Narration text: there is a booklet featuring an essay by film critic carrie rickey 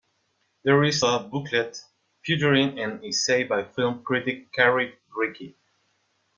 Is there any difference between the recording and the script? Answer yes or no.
no